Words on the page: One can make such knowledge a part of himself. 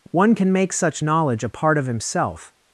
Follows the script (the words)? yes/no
yes